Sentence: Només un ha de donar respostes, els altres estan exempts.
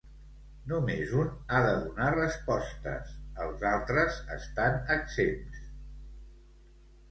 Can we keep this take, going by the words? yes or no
yes